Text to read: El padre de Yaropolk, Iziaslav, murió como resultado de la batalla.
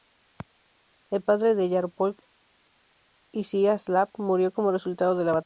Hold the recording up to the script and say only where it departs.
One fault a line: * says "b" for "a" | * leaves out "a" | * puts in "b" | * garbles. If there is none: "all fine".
all fine